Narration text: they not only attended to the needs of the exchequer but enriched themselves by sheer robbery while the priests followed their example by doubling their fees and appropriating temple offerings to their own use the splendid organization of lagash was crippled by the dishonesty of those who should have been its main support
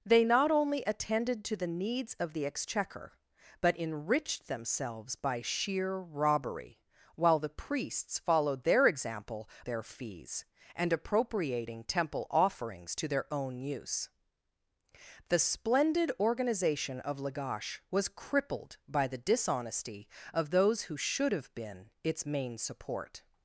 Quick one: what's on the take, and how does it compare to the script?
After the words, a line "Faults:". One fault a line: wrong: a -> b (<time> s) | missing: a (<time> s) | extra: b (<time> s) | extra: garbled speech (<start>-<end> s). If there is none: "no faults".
they not only attended to the needs of the exchequer but enriched themselves by sheer robbery while the priests followed their example their fees and appropriating temple offerings to their own use the splendid organization of lagash was crippled by the dishonesty of those who should have been its main support
Faults:
missing: by doubling (9.5 s)